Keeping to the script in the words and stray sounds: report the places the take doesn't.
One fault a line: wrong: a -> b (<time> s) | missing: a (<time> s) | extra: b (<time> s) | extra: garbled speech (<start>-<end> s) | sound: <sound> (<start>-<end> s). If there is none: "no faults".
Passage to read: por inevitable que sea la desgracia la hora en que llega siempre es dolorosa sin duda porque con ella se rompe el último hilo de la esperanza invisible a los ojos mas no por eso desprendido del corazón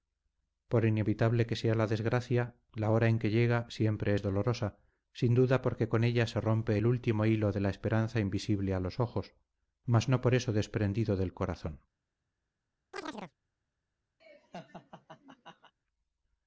sound: chirp (12.9-13.3 s)
sound: laugh (14.2-15.7 s)